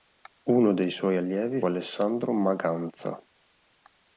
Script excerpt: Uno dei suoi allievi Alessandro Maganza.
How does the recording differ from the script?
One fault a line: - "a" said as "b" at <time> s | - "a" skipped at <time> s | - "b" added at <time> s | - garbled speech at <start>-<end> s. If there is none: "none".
none